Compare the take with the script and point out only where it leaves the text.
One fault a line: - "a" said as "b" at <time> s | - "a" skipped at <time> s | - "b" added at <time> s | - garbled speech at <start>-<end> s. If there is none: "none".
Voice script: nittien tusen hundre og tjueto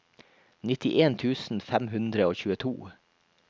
- "fem" added at 1.7 s